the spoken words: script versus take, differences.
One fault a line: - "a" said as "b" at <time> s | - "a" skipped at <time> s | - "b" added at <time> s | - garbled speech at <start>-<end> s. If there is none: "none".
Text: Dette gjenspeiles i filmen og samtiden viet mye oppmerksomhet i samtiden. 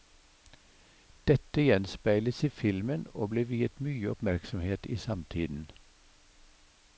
- "samtiden" said as "ble" at 3.3 s